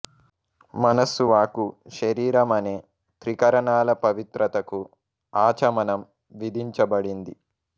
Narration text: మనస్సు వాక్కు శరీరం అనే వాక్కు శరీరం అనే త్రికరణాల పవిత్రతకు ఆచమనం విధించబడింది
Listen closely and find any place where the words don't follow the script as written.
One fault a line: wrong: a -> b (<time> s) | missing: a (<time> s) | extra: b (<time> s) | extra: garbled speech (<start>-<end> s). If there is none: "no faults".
missing: వాక్కు శరీరం అనే (2.7 s)